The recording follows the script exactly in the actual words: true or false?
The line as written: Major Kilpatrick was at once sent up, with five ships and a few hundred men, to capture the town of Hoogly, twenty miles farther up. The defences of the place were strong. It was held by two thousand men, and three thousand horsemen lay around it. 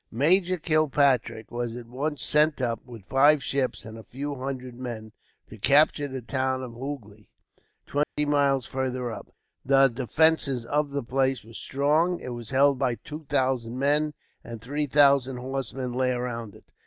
true